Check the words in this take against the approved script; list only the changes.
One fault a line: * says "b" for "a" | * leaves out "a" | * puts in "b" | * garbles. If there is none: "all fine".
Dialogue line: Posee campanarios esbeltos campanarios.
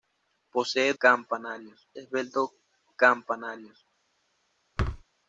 all fine